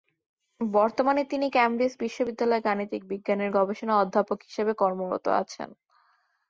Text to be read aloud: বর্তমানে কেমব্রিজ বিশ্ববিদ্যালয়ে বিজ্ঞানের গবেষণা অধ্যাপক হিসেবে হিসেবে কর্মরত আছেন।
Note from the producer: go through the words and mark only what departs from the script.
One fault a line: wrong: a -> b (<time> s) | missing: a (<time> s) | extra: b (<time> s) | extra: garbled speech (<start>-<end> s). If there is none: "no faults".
extra: তিনি (1.2 s)
extra: গাণিতিক (2.7 s)
missing: হিসেবে (4.7 s)